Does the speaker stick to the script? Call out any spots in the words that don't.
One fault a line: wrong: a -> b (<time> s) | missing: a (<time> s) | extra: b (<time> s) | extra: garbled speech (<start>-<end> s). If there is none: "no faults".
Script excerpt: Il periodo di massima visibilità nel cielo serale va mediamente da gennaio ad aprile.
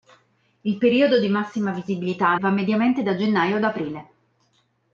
missing: nel cielo serale (2.4 s)